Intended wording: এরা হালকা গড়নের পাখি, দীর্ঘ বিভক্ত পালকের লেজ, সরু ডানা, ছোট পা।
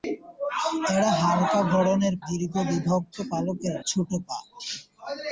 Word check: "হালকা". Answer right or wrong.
right